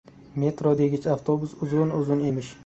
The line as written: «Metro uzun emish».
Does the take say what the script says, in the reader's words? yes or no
no